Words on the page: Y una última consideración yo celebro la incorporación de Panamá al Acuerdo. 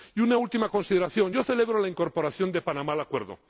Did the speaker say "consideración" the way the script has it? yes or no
yes